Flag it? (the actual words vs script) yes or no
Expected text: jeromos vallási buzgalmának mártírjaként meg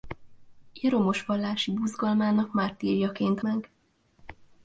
no